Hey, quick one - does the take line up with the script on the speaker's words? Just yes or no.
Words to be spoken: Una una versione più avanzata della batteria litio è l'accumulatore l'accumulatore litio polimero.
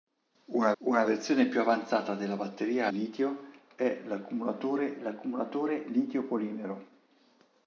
yes